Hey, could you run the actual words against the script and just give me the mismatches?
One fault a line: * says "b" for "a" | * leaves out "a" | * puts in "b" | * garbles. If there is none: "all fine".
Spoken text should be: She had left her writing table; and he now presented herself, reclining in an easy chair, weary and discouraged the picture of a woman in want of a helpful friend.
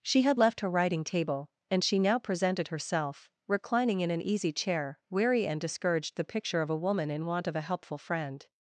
* says "she" for "he"